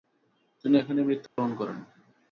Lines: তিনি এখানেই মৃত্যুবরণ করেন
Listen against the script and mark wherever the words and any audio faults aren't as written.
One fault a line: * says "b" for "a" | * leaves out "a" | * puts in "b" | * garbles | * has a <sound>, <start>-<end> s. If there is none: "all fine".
* has a dropout, 1.3-1.4 s